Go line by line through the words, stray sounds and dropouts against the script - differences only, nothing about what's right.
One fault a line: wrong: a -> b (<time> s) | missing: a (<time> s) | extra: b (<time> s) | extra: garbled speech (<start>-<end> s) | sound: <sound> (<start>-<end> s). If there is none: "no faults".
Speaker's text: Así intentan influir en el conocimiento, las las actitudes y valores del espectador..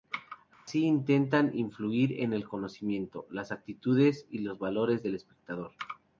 sound: dropout (0.5-0.7 s)
missing: las (3.5 s)
extra: los (4.4 s)